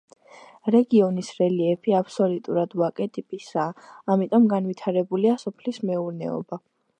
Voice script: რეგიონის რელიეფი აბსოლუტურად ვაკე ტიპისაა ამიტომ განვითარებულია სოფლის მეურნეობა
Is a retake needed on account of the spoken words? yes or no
no